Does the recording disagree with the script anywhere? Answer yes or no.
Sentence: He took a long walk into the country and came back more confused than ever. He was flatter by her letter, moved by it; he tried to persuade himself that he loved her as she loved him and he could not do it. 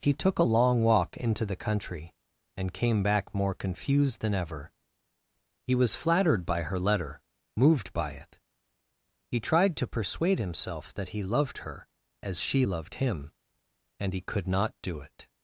yes